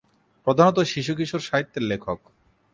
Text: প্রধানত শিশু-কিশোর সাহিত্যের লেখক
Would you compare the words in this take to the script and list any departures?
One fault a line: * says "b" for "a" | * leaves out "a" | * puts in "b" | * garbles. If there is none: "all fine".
all fine